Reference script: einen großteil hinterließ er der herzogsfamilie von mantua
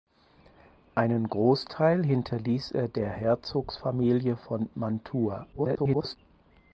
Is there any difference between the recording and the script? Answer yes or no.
yes